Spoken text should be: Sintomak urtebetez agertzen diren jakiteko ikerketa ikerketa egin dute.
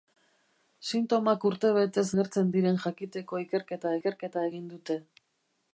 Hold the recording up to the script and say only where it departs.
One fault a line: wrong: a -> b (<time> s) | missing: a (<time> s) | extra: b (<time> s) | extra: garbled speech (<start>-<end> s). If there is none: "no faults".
no faults